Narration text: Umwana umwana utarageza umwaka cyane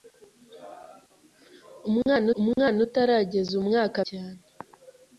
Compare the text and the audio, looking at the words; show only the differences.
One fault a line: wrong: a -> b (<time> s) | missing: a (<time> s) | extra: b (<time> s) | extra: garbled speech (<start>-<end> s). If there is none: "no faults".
no faults